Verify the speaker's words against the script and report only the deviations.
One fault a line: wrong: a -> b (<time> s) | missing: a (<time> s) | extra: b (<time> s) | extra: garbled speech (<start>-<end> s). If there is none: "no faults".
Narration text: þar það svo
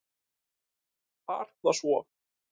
no faults